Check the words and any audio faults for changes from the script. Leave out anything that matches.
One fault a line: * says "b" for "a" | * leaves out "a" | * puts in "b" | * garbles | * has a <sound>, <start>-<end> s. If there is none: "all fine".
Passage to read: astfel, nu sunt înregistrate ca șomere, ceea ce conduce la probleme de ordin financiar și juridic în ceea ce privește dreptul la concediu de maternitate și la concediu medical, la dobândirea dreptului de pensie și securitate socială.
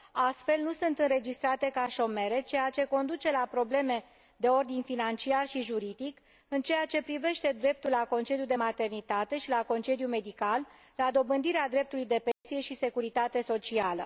* has a dropout, 12.3-12.4 s